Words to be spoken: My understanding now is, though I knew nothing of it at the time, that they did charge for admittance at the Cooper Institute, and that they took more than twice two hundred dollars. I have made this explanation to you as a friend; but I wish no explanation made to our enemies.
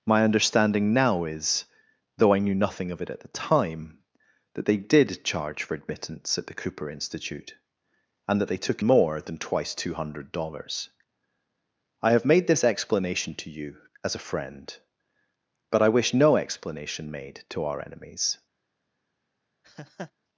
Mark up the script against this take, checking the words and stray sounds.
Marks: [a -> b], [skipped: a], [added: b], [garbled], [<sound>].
My understanding now is, though I knew nothing of it at the time, that they did charge for admittance at the Cooper Institute, and that they took more than twice two hundred dollars. I have made this explanation to you as a friend; but I wish no explanation made to our enemies. [laugh]